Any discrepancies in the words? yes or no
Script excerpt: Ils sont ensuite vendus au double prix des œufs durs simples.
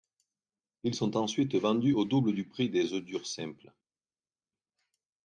yes